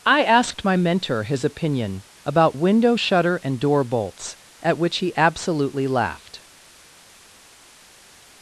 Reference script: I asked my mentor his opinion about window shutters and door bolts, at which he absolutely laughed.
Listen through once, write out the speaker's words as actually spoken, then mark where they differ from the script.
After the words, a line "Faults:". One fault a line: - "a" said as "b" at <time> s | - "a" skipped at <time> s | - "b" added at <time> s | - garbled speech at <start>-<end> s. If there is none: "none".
I asked my mentor his opinion about window shutter and door bolts, at which he absolutely laughed.
Faults:
- "shutters" said as "shutter" at 2.9 s